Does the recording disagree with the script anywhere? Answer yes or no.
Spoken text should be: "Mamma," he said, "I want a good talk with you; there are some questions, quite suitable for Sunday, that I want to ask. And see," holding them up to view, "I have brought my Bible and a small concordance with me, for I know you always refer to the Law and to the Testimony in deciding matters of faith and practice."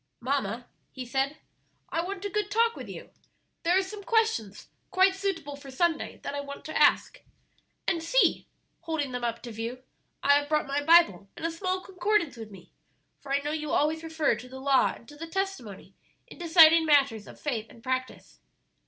no